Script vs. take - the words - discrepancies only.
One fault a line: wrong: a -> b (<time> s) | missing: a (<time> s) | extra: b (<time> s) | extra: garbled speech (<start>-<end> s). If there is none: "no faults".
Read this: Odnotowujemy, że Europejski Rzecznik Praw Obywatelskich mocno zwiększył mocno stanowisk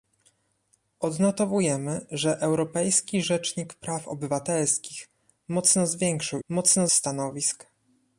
no faults